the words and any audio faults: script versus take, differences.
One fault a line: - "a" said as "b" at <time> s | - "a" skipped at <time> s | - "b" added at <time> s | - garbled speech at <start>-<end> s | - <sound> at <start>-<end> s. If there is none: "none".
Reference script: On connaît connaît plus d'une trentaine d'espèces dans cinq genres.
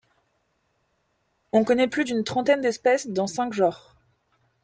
- "connaît" skipped at 1.9 s